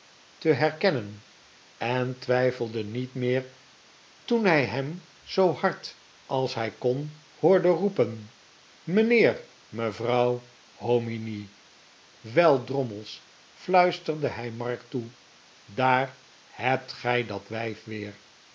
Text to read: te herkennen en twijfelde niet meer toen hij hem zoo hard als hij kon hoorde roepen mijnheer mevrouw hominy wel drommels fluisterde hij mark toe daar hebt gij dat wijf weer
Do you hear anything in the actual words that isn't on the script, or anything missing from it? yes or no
no